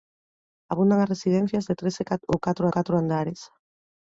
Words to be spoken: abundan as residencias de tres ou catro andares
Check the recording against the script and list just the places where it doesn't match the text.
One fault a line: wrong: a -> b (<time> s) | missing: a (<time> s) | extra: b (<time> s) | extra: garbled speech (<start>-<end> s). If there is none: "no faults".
extra: catro (2.7 s)